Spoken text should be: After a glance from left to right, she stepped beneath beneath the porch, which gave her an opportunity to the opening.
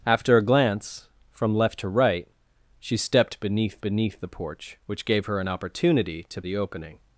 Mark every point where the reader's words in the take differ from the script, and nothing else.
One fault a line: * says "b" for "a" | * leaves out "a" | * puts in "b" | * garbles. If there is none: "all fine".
all fine